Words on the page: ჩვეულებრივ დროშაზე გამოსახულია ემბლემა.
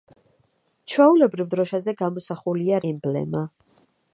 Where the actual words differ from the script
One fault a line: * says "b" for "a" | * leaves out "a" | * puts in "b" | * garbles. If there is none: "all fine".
all fine